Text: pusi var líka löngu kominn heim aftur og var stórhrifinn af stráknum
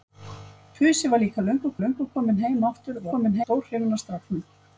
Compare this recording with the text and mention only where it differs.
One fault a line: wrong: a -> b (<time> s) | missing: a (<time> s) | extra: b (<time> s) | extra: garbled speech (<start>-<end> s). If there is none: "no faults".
extra: löngu (1.8 s)
wrong: var -> kominn (3.1 s)